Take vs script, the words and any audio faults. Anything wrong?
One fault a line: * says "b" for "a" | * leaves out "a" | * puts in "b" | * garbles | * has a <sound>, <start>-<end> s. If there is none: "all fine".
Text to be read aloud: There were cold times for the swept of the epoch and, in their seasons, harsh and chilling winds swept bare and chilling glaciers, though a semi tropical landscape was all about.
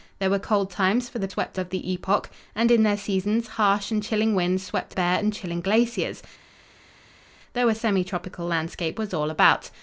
all fine